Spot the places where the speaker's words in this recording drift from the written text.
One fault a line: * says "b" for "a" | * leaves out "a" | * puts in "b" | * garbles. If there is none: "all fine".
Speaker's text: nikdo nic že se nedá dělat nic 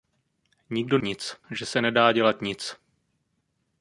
all fine